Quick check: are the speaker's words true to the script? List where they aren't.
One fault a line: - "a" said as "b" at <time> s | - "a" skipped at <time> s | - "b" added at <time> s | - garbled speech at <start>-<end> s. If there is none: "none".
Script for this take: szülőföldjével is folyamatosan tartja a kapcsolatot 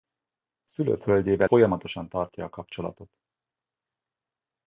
- "is" skipped at 1.5 s